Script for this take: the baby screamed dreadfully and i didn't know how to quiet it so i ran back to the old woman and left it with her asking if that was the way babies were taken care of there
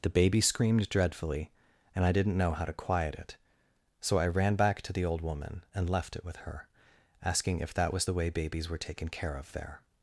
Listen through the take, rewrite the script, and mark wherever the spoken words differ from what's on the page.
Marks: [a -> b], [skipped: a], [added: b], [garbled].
the baby screamed dreadfully and i didn't know how to quiet it so i ran back to the old woman and left it with her asking if that was the way babies were taken care of there